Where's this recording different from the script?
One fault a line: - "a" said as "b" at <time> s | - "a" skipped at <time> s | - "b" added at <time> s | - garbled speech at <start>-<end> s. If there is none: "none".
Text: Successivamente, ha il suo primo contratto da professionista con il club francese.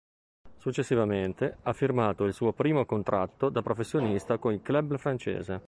- "firmato" added at 1.7 s